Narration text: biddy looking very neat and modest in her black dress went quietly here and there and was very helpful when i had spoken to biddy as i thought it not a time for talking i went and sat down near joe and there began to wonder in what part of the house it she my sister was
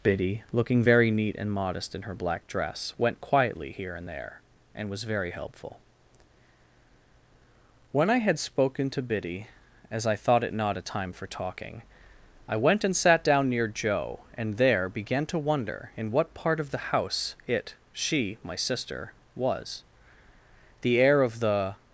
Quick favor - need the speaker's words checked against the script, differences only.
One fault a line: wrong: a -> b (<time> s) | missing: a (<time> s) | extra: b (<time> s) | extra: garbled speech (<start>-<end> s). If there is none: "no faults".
extra: the air of the (20.8 s)